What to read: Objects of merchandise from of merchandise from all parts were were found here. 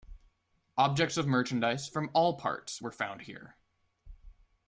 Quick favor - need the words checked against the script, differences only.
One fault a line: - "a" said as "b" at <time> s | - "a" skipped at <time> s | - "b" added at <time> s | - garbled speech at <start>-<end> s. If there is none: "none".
- "of merchandise from" skipped at 2.1 s
- "were" skipped at 2.9 s